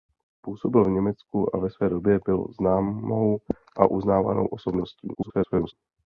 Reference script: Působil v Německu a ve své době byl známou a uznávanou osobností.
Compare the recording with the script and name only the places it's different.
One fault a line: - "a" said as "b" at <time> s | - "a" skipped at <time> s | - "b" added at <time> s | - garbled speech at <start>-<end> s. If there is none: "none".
- garbled speech at 5.1-5.7 s